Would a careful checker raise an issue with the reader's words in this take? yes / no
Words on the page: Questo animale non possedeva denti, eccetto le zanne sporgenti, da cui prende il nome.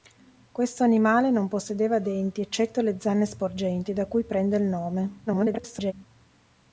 yes